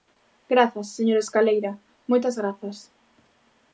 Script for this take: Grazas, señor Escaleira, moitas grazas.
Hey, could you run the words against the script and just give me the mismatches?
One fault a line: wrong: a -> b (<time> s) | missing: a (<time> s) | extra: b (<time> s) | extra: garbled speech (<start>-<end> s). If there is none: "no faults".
no faults